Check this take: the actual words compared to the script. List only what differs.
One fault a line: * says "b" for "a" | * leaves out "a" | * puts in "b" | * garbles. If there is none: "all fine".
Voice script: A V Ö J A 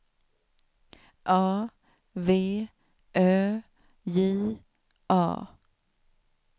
all fine